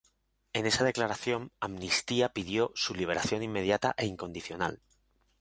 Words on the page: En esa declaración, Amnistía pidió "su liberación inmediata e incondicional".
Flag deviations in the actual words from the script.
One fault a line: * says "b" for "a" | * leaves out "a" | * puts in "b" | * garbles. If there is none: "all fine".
all fine